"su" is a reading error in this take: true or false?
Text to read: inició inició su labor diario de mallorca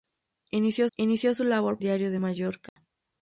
false